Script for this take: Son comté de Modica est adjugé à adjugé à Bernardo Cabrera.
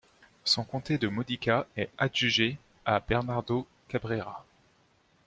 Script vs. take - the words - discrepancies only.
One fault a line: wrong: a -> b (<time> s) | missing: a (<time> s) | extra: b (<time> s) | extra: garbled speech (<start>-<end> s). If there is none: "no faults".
missing: adjugé à (3.0 s)